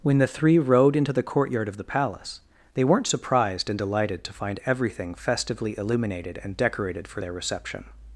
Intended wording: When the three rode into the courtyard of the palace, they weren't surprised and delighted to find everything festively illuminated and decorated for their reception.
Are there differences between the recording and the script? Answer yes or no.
no